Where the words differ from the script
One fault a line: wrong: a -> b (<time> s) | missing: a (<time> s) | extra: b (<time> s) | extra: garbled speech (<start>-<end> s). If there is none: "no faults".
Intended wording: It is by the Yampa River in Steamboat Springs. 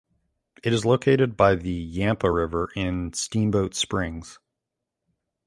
extra: located (0.8 s)